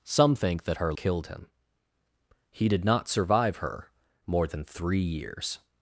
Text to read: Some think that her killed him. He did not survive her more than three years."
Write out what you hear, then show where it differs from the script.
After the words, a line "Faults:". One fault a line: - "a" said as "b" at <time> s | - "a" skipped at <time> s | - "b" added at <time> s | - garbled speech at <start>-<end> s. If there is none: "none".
Some think that her killed him. He did not survive her more than three years."
Faults:
none